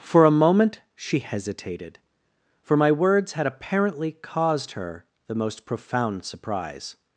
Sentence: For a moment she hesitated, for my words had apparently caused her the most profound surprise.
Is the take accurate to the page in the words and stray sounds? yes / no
yes